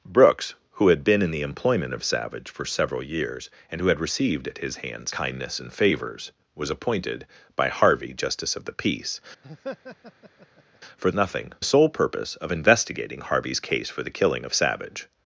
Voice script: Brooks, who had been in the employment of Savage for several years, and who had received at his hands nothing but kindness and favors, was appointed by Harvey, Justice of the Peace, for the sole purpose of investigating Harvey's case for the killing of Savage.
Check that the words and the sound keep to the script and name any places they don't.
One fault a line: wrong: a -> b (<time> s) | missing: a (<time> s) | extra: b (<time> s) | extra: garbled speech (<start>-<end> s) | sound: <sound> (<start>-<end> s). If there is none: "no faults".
missing: nothing but (5.1 s)
sound: laugh (9.4-10.8 s)
wrong: the -> nothing (11.1 s)